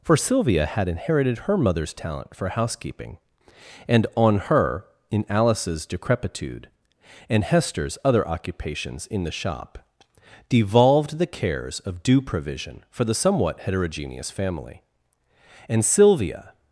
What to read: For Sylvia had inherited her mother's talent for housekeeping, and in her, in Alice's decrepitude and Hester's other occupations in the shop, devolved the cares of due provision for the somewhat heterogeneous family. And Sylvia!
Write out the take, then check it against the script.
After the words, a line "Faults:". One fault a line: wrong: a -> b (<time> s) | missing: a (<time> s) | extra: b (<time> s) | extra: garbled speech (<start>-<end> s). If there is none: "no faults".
For Sylvia had inherited her mother's talent for housekeeping, and on her, in Alice's decrepitude and Hester's other occupations in the shop, devolved the cares of due provision for the somewhat heterogeneous family. And Sylvia!
Faults:
wrong: in -> on (4.2 s)